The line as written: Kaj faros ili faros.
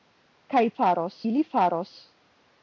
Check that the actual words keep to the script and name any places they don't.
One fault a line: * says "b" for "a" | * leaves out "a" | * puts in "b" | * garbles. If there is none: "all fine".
all fine